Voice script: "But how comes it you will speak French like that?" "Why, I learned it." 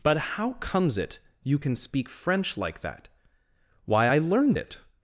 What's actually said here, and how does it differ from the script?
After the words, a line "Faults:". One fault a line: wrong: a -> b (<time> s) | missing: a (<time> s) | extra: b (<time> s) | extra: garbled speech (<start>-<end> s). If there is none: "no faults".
"But how comes it you can speak French like that?" "Why, I learned it."
Faults:
wrong: will -> can (1.6 s)